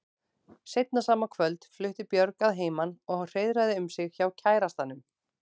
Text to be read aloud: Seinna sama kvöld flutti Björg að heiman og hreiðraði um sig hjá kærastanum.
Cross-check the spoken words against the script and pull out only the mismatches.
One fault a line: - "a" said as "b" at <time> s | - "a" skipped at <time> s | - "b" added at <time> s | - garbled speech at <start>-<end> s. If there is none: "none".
none